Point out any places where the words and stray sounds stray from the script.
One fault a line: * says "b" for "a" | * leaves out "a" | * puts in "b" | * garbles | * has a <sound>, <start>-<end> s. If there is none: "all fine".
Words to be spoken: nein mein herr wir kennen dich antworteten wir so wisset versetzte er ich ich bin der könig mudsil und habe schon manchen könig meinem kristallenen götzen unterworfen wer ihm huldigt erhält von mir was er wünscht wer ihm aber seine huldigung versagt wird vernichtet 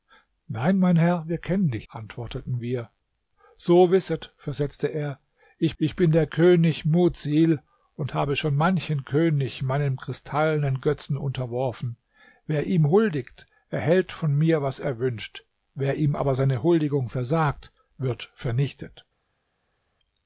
all fine